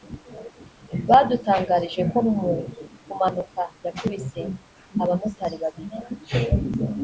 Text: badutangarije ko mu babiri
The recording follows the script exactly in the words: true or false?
false